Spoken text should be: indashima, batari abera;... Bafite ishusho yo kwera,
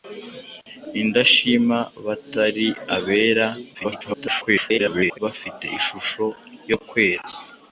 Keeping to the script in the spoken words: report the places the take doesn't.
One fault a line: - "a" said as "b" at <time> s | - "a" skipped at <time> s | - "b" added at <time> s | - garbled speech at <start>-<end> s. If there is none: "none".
- garbled speech at 3.7-5.2 s